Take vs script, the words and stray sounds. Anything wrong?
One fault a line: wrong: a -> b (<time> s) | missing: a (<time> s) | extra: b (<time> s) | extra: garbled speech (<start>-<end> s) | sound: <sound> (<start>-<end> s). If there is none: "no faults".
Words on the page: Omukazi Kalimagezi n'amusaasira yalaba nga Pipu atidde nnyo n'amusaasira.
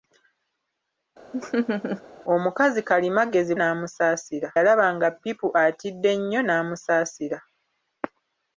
sound: laugh (1.3-2.0 s)